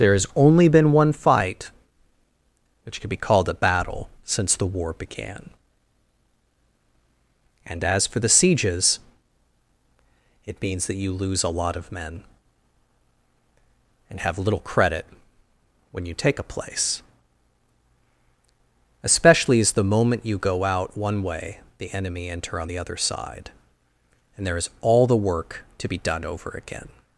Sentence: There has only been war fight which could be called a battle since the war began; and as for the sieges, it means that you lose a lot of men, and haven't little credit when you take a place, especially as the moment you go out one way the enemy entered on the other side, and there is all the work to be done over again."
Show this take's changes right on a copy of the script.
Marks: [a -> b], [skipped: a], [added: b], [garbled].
There has only been [war -> one] fight which could be called a battle since the war began; and as for the sieges, it means that you lose a lot of men, and [haven't -> have] little credit when you take a place, especially as the moment you go out one way the enemy [entered -> enter] on the other side, and there is all the work to be done over again."